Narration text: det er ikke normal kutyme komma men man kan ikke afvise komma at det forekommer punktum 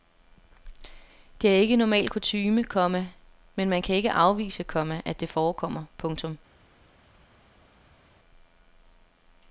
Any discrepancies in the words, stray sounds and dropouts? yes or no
no